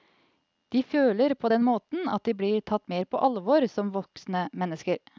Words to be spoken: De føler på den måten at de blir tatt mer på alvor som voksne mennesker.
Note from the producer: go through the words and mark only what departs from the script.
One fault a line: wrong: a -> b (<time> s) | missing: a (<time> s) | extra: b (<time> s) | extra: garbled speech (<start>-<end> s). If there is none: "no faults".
no faults